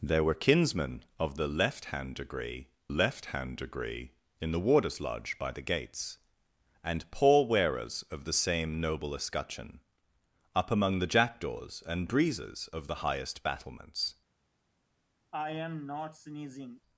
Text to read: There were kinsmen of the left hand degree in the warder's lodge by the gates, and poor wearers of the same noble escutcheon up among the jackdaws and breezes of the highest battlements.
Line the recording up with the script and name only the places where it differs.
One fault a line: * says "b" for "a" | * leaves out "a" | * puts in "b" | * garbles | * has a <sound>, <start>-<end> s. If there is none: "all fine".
* puts in "left hand degree"
* has a sneeze, 15.3-16.8 s